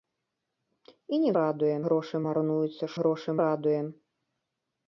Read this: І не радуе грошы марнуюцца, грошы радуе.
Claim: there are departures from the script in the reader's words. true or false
false